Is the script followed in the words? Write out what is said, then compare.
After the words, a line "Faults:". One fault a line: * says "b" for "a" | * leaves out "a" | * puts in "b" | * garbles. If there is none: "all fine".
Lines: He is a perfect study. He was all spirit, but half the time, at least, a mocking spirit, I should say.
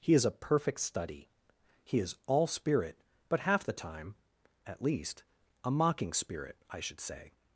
He is a perfect study. He is all spirit, but half the time, at least, a mocking spirit, I should say.
Faults:
* says "is" for "was"